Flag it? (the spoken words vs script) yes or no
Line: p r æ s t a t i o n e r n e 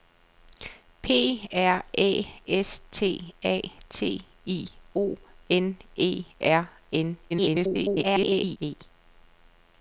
yes